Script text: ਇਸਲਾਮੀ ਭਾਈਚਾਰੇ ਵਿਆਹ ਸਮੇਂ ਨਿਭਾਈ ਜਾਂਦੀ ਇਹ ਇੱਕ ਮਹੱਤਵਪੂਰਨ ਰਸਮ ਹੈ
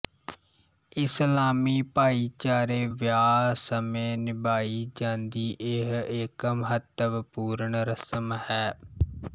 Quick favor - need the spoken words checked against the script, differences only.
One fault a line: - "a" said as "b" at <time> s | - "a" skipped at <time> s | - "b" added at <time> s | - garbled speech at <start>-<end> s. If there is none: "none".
none